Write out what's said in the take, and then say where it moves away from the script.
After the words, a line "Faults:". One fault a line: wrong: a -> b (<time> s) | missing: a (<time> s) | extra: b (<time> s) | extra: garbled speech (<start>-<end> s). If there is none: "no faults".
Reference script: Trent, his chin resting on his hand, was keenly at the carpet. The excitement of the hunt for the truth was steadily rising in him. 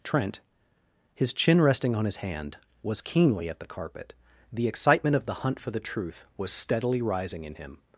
Trent, his chin resting on his hand, was keenly at the carpet. The excitement of the hunt for the truth was steadily rising in him.
Faults:
no faults